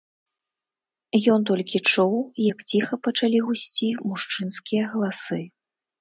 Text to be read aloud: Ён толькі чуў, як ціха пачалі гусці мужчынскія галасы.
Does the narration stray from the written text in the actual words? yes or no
no